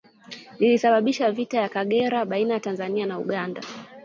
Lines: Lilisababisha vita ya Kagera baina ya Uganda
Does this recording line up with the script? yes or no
no